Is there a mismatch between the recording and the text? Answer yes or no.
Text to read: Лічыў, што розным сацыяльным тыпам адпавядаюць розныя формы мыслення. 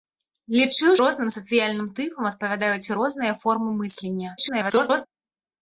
yes